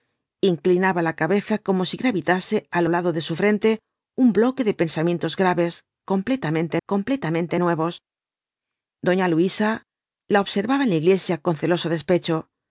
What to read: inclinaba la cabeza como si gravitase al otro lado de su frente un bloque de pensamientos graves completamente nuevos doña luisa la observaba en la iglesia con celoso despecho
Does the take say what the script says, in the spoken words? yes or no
no